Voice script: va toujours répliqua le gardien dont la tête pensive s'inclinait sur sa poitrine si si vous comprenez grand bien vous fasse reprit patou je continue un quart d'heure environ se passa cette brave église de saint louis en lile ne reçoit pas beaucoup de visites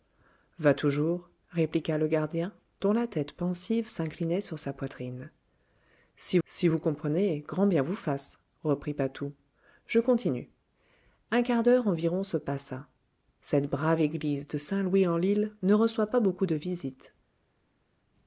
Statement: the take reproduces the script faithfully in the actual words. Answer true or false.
true